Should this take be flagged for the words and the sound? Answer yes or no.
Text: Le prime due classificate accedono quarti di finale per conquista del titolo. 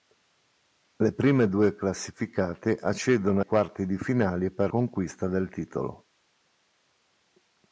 no